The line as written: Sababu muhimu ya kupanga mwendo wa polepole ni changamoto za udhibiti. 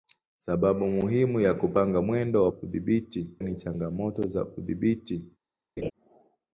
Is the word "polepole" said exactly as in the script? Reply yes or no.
no